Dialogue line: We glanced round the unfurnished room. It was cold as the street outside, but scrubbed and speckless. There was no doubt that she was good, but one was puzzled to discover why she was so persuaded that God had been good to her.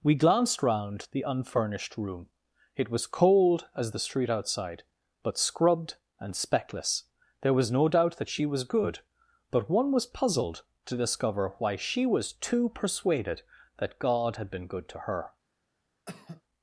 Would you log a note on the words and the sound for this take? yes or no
yes